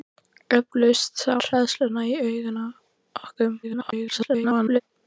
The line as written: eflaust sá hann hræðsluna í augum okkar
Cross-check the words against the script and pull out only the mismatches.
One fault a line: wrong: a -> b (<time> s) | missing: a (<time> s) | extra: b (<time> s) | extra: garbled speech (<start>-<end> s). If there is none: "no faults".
missing: hann (1.4 s)
extra: garbled speech (3.6-4.8 s)